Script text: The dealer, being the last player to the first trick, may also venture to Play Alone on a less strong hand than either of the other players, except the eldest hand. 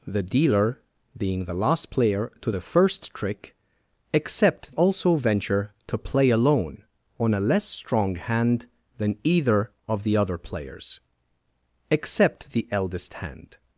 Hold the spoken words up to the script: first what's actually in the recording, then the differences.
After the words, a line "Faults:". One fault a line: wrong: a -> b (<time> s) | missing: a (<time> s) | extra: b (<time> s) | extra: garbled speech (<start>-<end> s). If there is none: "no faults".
The dealer, being the last player to the first trick, except also venture to Play Alone on a less strong hand than either of the other players, except the eldest hand.
Faults:
wrong: may -> except (4.1 s)